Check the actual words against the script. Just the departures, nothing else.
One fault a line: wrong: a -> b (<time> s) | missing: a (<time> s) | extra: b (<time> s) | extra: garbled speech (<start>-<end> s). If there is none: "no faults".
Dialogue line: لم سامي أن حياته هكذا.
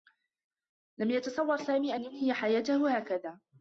extra: يتصوّر (1.1 s)
extra: ينهي (2.0 s)